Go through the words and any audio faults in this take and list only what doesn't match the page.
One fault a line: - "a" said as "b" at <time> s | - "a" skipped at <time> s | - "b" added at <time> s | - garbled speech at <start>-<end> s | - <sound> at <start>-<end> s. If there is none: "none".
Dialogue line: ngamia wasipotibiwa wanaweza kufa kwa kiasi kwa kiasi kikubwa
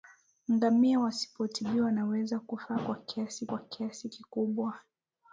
none